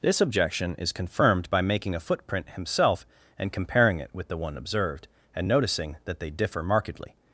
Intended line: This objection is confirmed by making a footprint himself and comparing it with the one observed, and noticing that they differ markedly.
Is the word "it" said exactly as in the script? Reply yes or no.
yes